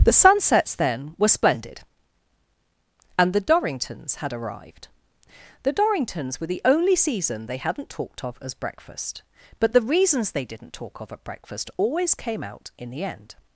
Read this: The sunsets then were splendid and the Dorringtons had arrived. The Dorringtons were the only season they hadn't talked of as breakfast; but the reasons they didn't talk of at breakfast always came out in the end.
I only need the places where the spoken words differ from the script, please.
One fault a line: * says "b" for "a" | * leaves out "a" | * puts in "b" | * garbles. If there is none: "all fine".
all fine